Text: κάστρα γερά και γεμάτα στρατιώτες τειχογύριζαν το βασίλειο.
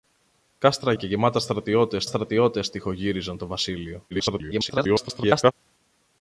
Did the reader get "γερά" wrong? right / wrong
wrong